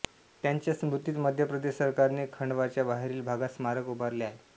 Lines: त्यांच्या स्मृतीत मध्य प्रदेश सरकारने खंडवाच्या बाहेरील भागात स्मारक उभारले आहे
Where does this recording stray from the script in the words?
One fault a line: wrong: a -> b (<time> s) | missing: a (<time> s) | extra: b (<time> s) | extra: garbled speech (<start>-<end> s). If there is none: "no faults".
no faults